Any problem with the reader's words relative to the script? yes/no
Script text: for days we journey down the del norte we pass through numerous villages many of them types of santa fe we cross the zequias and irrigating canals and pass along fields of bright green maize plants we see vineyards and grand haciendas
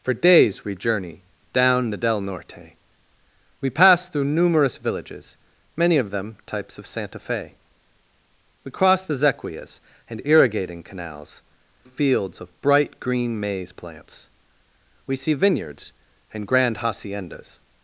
yes